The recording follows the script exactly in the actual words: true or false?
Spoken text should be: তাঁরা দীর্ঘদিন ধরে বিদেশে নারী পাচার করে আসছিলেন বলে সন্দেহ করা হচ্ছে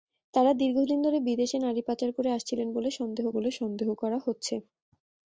false